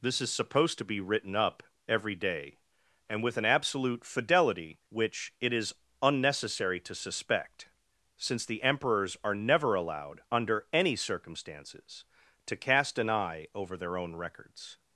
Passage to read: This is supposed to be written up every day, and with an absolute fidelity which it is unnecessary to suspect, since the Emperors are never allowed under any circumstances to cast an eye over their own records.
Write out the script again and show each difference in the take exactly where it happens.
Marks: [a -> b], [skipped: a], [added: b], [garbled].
This is supposed to be written up every day, and with an absolute fidelity which it is unnecessary to suspect, since the Emperors are never allowed under any circumstances to cast an eye over their own records.